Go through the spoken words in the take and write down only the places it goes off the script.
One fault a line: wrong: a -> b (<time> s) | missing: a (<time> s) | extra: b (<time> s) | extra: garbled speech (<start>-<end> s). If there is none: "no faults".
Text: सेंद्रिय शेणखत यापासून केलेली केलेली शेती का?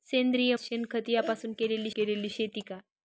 no faults